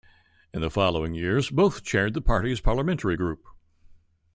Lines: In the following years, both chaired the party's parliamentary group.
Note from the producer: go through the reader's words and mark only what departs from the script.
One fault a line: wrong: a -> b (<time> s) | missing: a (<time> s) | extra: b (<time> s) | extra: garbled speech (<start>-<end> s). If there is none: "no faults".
no faults